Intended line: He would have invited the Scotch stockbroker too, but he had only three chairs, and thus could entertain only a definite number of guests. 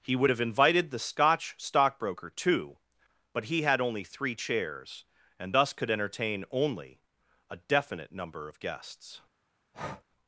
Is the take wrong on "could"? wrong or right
right